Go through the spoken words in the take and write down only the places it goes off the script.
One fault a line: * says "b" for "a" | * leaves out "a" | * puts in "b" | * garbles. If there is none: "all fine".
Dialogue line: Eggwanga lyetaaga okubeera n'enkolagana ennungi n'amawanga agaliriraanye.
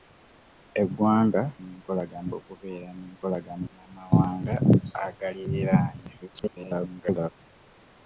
* says "n'enkolagana" for "lyetaaga"
* leaves out "ennungi"
* garbles